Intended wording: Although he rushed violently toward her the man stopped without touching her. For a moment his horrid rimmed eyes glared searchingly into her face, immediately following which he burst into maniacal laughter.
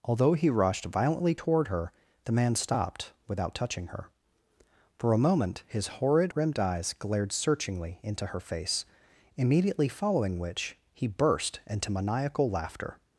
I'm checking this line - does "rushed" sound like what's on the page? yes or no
yes